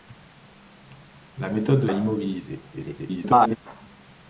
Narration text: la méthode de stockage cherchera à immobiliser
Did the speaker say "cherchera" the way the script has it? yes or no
no